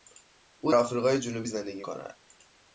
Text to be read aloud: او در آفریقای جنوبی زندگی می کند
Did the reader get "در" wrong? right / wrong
wrong